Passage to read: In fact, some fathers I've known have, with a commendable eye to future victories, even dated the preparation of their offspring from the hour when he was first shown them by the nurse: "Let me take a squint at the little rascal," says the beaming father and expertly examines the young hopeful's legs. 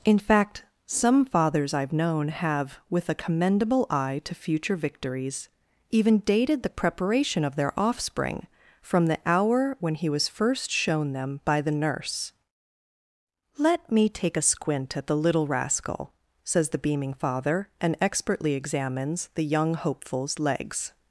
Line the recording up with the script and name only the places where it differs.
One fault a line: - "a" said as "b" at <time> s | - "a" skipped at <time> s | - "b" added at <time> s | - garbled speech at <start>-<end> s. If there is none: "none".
none